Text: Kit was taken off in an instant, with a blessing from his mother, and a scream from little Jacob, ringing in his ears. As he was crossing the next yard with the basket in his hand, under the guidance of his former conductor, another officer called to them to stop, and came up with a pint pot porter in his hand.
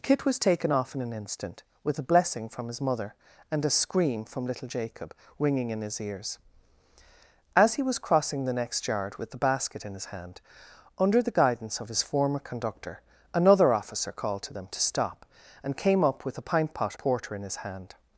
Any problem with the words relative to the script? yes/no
no